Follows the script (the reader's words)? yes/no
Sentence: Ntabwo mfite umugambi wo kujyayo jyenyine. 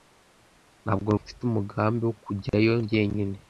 yes